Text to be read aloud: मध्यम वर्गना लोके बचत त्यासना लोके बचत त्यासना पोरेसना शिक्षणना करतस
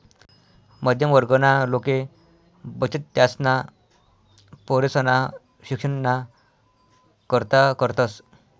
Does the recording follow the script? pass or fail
fail